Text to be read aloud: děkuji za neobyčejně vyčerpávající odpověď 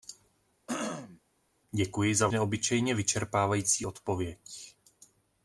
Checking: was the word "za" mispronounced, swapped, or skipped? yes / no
no